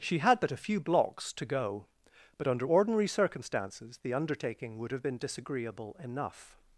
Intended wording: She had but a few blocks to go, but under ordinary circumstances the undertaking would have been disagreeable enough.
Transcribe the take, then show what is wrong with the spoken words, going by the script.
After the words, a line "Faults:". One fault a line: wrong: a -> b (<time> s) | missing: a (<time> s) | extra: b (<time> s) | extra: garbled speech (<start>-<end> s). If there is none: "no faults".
She had but a few blocks to go, but under ordinary circumstances the undertaking would have been disagreeable enough.
Faults:
no faults